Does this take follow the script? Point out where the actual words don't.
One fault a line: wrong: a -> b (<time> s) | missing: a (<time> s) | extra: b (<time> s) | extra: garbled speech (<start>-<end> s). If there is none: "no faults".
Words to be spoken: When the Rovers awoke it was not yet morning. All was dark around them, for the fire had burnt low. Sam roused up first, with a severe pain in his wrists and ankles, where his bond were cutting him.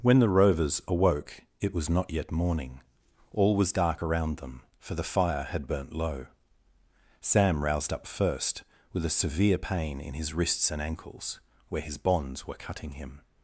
wrong: bond -> bonds (12.0 s)